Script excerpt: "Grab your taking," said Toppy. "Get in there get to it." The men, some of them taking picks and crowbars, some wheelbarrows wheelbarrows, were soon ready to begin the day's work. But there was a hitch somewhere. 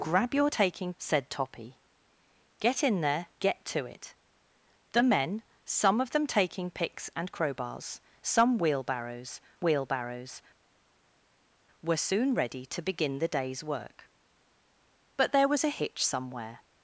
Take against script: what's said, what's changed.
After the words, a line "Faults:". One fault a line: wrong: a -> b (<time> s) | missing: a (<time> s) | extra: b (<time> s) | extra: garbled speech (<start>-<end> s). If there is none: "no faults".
"Grab your taking," said Toppy. "Get in there get to it." The men, some of them taking picks and crowbars, some wheelbarrows wheelbarrows, were soon ready to begin the day's work. But there was a hitch somewhere.
Faults:
no faults